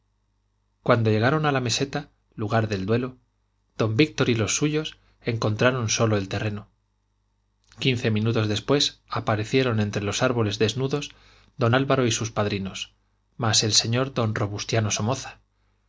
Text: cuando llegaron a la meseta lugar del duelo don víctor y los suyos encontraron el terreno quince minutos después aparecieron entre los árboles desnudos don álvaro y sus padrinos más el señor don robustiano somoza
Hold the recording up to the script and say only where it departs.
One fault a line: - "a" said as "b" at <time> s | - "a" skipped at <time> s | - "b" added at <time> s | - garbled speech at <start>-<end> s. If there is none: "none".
- "solo" added at 5.9 s